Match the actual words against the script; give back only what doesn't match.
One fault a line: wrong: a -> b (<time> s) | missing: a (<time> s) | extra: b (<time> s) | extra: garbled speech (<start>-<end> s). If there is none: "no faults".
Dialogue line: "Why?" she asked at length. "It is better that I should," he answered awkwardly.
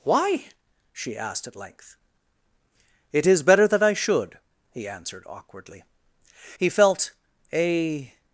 extra: He felt a (6.6 s)